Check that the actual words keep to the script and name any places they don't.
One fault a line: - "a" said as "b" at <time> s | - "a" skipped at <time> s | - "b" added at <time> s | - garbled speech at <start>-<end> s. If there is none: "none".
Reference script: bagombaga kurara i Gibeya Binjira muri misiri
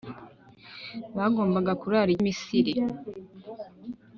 - "Gibeya Binjira muri" skipped at 2.2 s